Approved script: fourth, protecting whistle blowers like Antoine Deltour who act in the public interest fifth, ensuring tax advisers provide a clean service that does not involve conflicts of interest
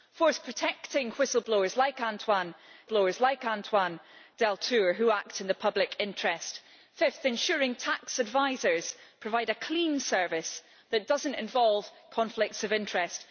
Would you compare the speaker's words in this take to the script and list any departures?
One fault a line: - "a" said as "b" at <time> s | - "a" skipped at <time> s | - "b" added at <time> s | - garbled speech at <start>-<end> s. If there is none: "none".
- "blowers like Antoine" added at 2.8 s